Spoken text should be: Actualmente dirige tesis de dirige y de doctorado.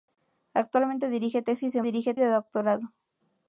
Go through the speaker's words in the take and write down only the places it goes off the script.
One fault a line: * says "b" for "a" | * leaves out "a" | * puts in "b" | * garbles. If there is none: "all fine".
all fine